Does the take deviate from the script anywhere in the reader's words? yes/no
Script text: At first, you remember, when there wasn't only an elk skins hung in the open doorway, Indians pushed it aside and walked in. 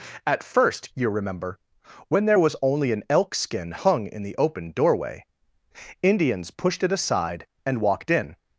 yes